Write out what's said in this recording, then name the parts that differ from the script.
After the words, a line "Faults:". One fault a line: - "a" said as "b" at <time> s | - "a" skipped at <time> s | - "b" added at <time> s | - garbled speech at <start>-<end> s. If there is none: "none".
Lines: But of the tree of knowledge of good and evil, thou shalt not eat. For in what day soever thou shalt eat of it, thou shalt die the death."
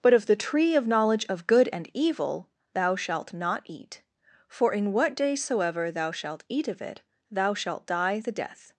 But of the tree of knowledge of good and evil, thou shalt not eat. For in what day soever thou shalt eat of it, thou shalt die the death."
Faults:
none